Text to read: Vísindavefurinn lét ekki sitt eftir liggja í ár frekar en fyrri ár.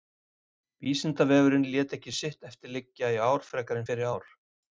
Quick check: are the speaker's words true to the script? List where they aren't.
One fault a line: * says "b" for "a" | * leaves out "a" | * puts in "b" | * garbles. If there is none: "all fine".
all fine